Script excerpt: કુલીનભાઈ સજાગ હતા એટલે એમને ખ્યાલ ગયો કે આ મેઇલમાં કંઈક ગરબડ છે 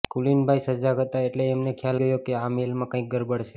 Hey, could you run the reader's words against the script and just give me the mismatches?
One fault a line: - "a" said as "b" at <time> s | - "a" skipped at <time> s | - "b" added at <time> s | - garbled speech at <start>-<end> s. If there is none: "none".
none